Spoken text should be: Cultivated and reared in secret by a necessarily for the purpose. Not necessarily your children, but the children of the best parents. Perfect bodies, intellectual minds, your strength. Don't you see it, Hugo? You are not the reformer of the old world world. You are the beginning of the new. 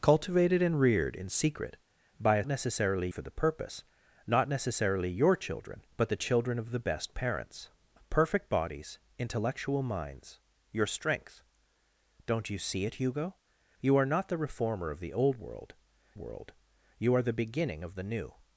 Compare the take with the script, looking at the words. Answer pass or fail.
pass